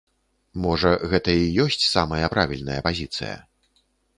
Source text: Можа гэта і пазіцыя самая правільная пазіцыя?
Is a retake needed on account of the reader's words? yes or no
yes